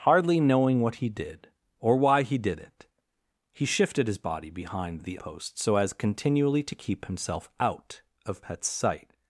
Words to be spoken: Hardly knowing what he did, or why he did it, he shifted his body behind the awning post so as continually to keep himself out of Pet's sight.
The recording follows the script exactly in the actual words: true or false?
false